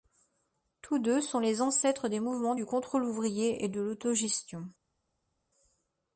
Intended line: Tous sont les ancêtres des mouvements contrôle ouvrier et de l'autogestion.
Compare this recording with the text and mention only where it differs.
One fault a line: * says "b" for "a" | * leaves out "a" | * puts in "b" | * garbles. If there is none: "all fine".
* puts in "deux"
* puts in "du"